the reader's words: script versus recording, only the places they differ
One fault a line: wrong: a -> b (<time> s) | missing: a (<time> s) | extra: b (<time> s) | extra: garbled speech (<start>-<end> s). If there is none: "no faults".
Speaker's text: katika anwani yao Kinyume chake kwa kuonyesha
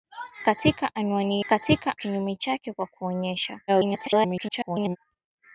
wrong: yao -> katika (1.5 s)
extra: garbled speech (3.7-5.0 s)